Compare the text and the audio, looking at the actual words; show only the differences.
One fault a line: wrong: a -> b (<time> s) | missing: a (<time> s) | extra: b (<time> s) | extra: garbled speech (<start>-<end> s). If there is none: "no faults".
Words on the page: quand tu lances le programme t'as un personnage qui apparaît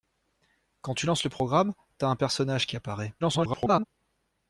extra: garbled speech (3.2-3.9 s)